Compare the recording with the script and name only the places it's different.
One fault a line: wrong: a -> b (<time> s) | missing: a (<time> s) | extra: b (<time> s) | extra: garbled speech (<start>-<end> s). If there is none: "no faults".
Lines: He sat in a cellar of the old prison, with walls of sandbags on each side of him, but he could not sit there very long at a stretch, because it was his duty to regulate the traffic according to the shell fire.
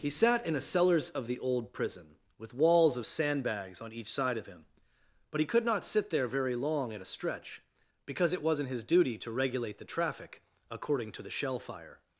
wrong: cellar -> cellars (0.6 s)
wrong: was -> wasn't (8.4 s)